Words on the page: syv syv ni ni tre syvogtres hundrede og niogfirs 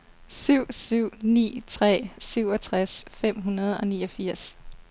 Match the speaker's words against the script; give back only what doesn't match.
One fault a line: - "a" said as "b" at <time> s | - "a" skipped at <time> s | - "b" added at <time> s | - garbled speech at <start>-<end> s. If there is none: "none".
- "ni" skipped at 1.6 s
- "fem" added at 3.1 s